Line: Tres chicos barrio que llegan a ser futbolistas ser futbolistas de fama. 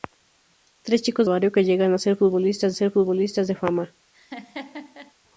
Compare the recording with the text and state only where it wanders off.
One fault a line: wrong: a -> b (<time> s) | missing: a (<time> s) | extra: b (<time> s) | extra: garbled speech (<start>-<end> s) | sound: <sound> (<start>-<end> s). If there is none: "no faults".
sound: laugh (4.1-5.1 s)